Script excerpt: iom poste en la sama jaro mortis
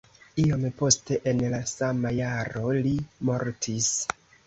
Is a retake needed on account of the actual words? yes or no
yes